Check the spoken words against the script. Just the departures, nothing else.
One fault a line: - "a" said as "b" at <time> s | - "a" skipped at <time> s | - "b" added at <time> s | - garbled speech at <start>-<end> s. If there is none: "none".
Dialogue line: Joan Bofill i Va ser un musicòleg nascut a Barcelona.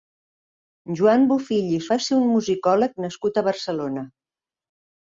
none